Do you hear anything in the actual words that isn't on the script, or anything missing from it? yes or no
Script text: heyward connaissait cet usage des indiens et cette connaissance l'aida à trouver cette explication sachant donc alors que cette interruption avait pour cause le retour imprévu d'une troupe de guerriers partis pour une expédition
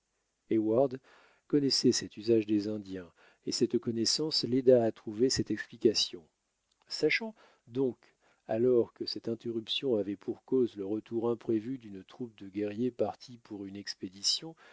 no